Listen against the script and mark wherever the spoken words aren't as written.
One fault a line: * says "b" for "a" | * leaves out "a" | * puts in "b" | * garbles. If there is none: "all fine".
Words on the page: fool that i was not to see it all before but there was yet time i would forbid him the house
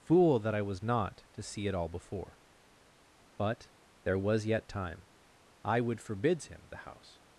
* says "forbids" for "forbid"